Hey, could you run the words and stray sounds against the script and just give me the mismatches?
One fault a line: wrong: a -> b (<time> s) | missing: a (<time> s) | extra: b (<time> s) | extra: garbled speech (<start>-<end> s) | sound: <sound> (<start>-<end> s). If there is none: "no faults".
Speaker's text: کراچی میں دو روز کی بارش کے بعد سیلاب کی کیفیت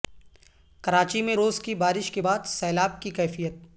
missing: دو (1.4 s)